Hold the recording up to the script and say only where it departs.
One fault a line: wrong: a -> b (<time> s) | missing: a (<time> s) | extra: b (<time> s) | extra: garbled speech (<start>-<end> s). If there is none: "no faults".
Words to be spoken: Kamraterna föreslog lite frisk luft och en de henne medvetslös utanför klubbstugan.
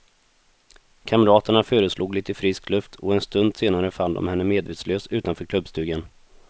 extra: stund senare fann (3.2 s)